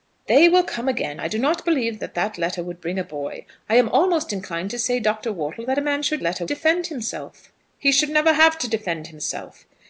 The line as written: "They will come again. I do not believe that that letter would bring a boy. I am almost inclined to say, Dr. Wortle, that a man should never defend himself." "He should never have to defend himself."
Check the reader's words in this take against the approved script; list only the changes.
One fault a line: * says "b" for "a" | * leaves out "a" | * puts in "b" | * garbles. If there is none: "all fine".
* says "letter" for "never"